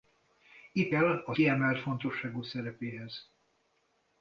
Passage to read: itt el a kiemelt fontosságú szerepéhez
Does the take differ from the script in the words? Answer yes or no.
no